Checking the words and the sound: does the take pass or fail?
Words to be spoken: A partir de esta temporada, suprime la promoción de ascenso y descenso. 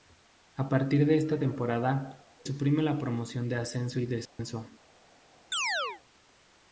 fail